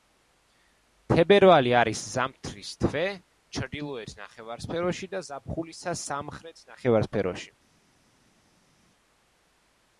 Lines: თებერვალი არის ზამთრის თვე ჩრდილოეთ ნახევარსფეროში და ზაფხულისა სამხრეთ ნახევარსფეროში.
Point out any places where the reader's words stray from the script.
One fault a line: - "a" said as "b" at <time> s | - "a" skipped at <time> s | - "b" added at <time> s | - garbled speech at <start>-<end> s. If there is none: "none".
none